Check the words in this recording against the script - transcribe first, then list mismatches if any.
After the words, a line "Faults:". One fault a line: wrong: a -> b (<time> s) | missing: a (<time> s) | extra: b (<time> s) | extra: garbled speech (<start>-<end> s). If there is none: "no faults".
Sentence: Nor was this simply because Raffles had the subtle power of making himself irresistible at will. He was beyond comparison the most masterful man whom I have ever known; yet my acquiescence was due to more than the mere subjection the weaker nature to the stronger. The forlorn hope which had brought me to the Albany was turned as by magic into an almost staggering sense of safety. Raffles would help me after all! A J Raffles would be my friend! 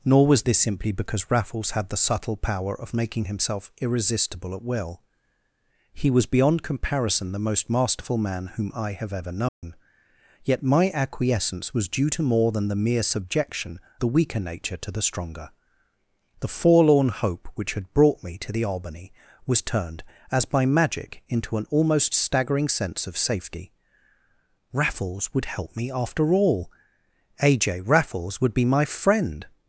Nor was this simply because Raffles had the subtle power of making himself irresistible at will. He was beyond comparison the most masterful man whom I have ever known; yet my acquiescence was due to more than the mere subjection the weaker nature to the stronger. The forlorn hope which had brought me to the Albany was turned as by magic into an almost staggering sense of safety. Raffles would help me after all! A J Raffles would be my friend!
Faults:
no faults